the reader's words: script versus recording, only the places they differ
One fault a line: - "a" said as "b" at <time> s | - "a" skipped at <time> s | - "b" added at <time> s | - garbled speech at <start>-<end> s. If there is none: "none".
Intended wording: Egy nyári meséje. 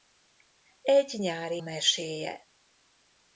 none